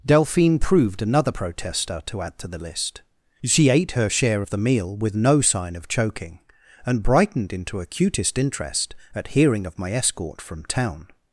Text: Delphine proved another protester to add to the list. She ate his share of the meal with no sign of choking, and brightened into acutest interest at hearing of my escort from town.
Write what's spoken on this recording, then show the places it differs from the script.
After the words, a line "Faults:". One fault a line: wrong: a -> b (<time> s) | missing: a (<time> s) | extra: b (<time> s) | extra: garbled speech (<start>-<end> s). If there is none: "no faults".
Delphine proved another protester to add to the list. She ate her share of the meal with no sign of choking, and brightened into acutest interest at hearing of my escort from town.
Faults:
wrong: his -> her (3.9 s)